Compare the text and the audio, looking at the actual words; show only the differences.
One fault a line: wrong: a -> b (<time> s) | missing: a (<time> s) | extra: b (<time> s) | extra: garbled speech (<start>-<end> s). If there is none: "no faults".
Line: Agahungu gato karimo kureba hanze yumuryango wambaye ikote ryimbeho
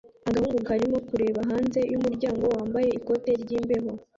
missing: gato (0.6 s)